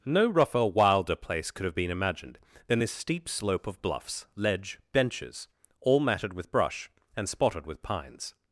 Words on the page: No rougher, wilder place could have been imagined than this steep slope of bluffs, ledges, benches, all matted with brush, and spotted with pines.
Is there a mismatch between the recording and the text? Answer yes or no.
yes